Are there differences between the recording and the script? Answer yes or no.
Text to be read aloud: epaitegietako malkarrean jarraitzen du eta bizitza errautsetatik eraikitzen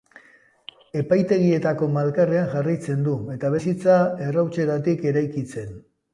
no